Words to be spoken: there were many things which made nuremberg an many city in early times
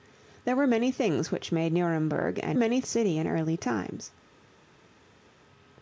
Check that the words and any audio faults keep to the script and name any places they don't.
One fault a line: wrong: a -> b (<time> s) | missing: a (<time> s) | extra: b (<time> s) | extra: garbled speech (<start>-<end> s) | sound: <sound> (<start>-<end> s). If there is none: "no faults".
no faults